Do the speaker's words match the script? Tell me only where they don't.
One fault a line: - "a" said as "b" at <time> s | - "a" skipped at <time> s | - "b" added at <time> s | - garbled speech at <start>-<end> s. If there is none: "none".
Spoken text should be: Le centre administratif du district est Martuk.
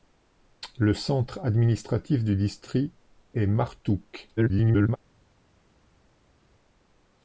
- garbled speech at 4.4-5.0 s